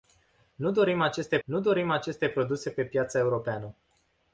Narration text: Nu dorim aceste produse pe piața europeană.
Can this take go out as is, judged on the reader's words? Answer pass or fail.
fail